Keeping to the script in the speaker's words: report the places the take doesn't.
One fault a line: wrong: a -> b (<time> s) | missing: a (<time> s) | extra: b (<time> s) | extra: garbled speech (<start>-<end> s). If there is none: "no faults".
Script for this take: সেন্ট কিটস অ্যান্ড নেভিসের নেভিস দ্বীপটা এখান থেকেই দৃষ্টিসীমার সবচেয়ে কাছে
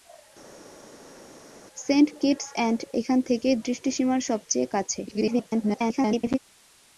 missing: নেভিসের নেভিস দ্বীপটা (2.8 s)
extra: garbled speech (5.1-6.4 s)